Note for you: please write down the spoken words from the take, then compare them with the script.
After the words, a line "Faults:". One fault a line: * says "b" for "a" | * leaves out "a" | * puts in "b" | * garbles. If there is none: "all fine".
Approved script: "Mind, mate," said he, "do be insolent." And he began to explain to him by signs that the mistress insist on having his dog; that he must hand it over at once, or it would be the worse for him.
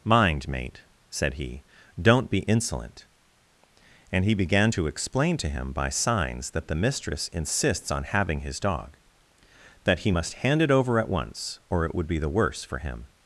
"Mind, mate," said he, "don't be insolent." And he began to explain to him by signs that the mistress insists on having his dog; that he must hand it over at once, or it would be the worse for him.
Faults:
* says "don't" for "do"
* says "insists" for "insist"